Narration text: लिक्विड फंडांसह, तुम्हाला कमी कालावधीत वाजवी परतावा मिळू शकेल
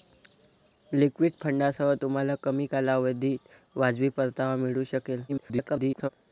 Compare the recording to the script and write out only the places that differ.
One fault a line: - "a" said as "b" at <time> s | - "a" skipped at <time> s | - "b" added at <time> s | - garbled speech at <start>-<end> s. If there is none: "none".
- garbled speech at 5.3-6.1 s